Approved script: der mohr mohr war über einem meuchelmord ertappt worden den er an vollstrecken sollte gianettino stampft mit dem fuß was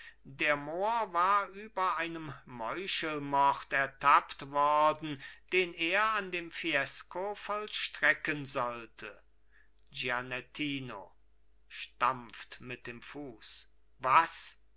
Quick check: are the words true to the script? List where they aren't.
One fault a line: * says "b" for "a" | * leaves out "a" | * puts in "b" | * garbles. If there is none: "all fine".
* leaves out "mohr"
* puts in "dem fiesco"